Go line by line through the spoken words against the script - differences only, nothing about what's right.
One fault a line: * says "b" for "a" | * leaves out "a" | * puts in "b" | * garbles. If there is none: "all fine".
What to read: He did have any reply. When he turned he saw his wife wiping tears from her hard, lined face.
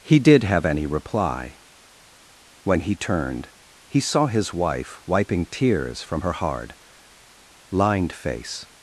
all fine